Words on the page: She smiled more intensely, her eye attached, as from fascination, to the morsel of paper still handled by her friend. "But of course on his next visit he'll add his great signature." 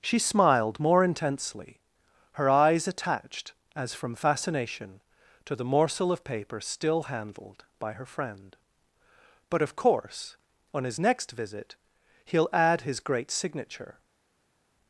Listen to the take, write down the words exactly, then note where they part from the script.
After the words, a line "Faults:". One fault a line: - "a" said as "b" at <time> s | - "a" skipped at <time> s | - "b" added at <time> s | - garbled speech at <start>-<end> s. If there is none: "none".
She smiled more intensely, her eyes attached, as from fascination, to the morsel of paper still handled by her friend. "But of course on his next visit he'll add his great signature."
Faults:
- "eye" said as "eyes" at 2.5 s